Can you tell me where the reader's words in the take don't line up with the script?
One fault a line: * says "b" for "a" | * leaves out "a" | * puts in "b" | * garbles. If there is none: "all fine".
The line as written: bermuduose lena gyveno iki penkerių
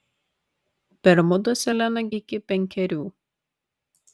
* leaves out "gyveno"